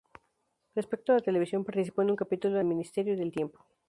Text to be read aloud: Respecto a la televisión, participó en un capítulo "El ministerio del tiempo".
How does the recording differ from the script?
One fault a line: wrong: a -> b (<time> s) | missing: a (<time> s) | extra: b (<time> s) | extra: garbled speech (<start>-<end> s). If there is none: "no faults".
no faults